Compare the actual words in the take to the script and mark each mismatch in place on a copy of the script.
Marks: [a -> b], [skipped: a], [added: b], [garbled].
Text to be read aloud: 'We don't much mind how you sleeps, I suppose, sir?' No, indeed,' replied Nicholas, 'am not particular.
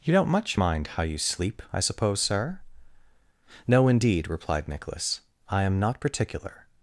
['We -> You] don't much mind how you [sleeps, -> sleep] I suppose, sir?' No, indeed,' replied Nicholas, [added: I] 'am not particular.